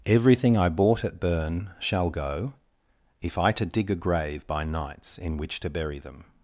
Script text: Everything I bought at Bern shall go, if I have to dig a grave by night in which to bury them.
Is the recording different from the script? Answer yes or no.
yes